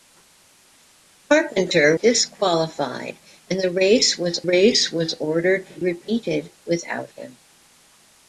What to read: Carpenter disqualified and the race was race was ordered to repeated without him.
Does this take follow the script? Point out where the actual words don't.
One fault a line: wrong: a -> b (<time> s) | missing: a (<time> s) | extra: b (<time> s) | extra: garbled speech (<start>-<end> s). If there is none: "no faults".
no faults